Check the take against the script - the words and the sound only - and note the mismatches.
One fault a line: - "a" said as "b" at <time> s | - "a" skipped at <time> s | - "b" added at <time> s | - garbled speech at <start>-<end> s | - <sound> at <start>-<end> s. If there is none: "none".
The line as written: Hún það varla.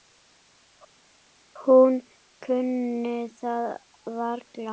- "kunni" added at 2.4 s